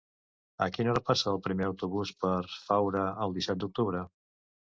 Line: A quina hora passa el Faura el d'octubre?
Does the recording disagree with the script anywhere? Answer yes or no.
yes